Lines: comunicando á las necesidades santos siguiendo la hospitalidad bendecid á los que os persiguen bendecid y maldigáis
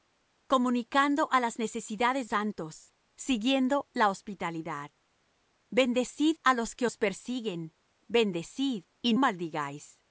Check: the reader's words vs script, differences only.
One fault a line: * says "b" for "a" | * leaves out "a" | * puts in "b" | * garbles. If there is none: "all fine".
all fine